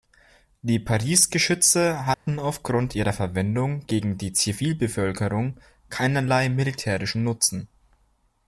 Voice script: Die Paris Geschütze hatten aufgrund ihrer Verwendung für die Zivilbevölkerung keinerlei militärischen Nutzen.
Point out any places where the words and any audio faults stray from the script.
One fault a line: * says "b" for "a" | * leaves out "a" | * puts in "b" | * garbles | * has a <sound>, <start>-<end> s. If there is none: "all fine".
* has a dropout, 2.1-2.3 s
* says "gegen" for "für"